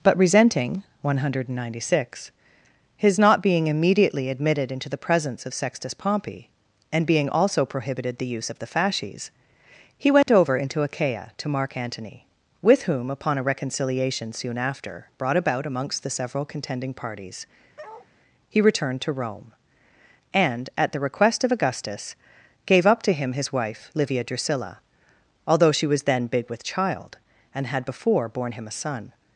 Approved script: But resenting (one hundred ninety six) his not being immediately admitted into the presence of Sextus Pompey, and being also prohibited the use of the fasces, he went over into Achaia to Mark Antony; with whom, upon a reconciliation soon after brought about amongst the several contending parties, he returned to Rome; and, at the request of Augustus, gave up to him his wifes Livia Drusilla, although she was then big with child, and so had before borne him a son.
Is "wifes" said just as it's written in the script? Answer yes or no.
no